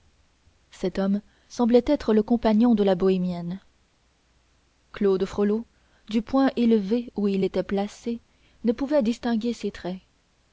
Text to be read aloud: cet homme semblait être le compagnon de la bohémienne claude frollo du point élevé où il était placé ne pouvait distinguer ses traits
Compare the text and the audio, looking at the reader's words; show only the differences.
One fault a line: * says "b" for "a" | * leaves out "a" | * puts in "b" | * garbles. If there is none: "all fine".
all fine